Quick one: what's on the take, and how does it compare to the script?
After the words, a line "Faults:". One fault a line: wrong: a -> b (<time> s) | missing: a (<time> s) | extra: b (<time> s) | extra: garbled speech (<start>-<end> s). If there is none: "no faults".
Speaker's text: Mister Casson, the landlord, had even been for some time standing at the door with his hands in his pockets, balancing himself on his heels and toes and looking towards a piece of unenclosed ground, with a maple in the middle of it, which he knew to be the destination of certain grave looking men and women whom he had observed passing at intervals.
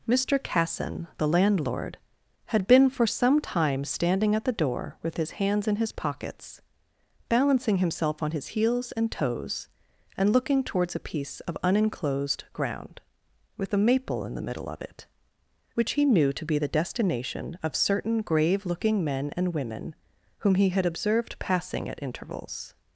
Mister Casson, the landlord, had been for some time standing at the door with his hands in his pockets, balancing himself on his heels and toes and looking towards a piece of unenclosed ground, with a maple in the middle of it, which he knew to be the destination of certain grave looking men and women whom he had observed passing at intervals.
Faults:
missing: even (2.7 s)